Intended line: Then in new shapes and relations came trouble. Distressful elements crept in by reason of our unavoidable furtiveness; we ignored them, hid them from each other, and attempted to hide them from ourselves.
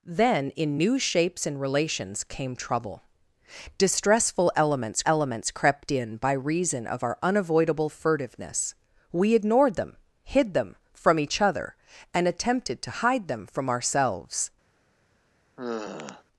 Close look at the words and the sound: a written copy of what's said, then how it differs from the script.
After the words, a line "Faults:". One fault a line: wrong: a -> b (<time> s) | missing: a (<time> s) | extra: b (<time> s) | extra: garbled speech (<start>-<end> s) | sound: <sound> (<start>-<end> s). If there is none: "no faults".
Then in new shapes and relations came trouble. Distressful elements elements crept in by reason of our unavoidable furtiveness; we ignored them, hid them from each other, and attempted to hide them from ourselves.
Faults:
extra: elements (5.0 s)
sound: sigh (15.6-16.2 s)